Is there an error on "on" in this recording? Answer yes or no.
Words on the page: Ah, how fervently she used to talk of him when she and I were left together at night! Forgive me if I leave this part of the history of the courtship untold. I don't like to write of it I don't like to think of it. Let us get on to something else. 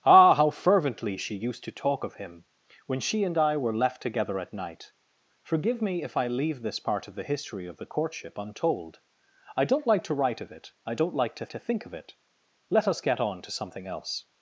no